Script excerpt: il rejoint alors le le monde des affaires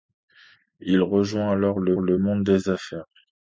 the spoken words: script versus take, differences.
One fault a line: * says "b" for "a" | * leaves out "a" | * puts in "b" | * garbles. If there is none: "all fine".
all fine